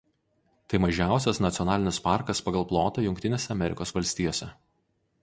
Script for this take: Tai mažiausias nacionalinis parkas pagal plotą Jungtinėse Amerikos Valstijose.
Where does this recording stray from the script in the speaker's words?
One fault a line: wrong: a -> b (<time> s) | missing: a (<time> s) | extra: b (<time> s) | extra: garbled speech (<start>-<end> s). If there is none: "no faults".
no faults